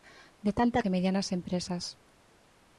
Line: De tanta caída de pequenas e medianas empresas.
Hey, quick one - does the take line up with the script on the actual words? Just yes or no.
no